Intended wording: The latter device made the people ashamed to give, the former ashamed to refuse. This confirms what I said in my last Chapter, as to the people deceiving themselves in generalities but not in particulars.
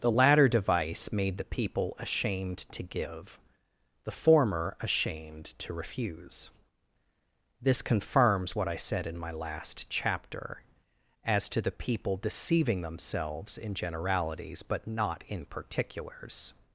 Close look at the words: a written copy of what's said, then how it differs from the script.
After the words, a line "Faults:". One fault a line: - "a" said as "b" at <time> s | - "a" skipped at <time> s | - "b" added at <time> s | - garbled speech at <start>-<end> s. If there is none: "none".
The latter device made the people ashamed to give, the former ashamed to refuse. This confirms what I said in my last Chapter, as to the people deceiving themselves in generalities but not in particulars.
Faults:
none